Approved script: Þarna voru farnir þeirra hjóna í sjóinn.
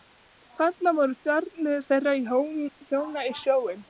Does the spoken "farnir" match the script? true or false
true